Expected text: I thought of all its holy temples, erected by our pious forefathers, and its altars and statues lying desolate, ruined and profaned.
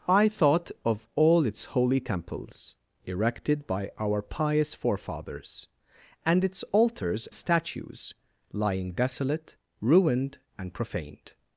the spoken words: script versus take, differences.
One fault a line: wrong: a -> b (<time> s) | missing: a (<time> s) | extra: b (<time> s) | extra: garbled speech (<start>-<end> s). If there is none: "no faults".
missing: and (7.3 s)